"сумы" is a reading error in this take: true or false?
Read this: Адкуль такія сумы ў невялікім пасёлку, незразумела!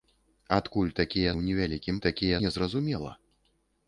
true